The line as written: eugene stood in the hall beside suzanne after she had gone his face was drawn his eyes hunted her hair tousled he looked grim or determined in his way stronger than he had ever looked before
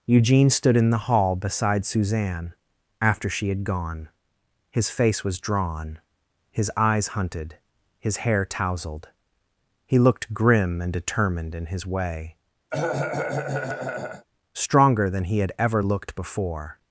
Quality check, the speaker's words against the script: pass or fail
fail